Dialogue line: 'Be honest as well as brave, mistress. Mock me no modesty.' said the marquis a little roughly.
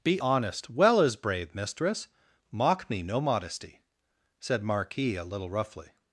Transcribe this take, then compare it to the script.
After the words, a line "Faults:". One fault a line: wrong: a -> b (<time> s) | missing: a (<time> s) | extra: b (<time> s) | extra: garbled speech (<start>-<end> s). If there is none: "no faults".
'Be honest well as brave, mistress. Mock me no modesty.' said marquis a little roughly.
Faults:
missing: as (0.7 s)
missing: the (4.6 s)